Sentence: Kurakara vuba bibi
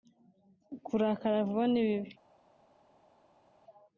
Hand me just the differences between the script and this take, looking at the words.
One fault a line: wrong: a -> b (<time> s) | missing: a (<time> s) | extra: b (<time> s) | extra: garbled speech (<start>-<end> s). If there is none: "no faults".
extra: ni (1.7 s)